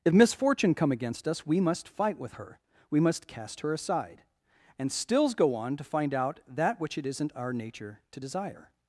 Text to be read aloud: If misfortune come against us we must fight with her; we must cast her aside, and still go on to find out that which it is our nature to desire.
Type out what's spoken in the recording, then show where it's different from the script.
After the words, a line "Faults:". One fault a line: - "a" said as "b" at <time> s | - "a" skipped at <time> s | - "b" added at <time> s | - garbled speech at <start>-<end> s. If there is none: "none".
If misfortune come against us we must fight with her; we must cast her aside, and stills go on to find out that which it isn't our nature to desire.
Faults:
- "still" said as "stills" at 4.9 s
- "is" said as "isn't" at 7.0 s